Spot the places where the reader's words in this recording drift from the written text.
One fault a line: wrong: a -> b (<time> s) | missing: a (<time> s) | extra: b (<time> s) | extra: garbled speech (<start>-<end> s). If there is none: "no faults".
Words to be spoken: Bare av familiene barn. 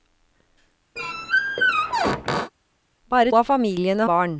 no faults